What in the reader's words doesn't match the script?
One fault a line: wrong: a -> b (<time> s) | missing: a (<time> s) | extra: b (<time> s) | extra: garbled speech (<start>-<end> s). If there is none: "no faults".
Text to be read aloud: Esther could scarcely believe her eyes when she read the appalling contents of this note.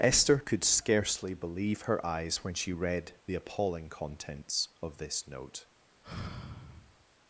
no faults